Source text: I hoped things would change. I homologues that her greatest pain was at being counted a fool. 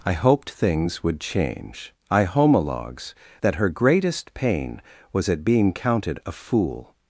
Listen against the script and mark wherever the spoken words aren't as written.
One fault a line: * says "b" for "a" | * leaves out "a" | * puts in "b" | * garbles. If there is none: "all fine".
all fine